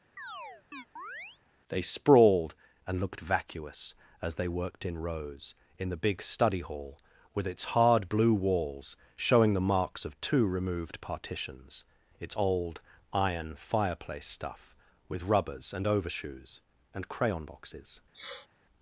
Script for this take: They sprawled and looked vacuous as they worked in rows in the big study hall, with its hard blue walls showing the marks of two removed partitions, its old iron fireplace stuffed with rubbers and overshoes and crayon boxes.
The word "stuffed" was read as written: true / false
false